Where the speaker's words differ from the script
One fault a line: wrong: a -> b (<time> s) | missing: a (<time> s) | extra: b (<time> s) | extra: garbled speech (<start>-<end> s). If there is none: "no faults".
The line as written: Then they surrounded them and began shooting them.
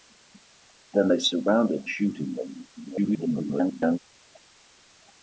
missing: them and began (1.9 s)
extra: garbled speech (2.8-4.0 s)